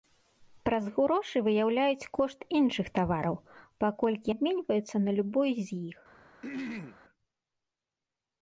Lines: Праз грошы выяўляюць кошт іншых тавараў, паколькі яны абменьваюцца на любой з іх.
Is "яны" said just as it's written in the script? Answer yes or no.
no